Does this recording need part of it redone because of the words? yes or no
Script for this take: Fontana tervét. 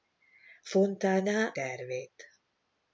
no